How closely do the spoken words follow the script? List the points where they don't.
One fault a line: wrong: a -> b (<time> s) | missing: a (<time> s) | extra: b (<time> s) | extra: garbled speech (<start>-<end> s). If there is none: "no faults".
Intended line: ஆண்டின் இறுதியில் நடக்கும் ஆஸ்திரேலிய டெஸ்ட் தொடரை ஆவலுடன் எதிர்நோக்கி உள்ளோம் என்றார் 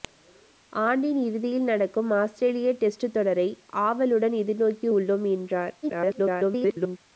extra: garbled speech (5.8-7.0 s)